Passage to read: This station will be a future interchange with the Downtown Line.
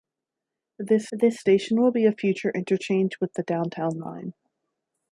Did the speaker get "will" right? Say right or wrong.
right